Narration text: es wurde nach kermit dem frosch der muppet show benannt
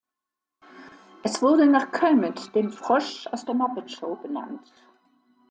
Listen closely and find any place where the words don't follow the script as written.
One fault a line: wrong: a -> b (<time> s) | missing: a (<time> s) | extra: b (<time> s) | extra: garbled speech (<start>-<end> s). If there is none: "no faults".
extra: aus (3.3 s)